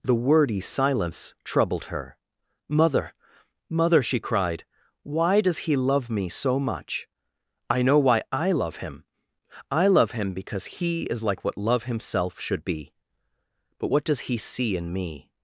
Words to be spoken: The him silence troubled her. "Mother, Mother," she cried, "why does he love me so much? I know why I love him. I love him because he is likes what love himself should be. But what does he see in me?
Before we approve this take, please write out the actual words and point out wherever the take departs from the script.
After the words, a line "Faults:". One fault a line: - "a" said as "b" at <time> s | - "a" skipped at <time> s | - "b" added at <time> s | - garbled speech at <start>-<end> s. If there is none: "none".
The wordy silence troubled her. "Mother, Mother," she cried, "why does he love me so much? I know why I love him. I love him because he is like what love himself should be. But what does he see in me?
Faults:
- "him" said as "wordy" at 0.1 s
- "likes" said as "like" at 11.2 s